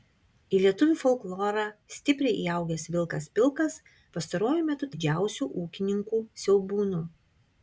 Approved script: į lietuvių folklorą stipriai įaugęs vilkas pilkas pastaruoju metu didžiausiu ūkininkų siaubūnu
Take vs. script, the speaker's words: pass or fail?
pass